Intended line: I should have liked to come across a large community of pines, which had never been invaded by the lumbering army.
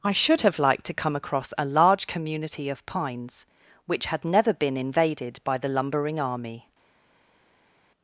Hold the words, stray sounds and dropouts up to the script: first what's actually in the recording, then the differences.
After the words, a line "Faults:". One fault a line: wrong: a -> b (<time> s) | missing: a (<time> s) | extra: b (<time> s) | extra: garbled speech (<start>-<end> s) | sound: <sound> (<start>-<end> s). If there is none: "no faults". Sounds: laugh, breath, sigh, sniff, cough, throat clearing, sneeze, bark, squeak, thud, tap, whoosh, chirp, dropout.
I should have liked to come across a large community of pines, which had never been invaded by the lumbering army.
Faults:
no faults